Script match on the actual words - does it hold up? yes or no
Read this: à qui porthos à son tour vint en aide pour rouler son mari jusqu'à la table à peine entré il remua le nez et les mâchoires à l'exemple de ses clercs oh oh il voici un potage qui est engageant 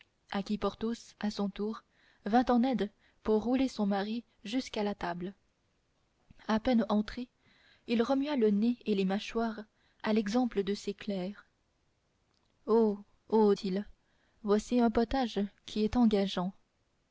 yes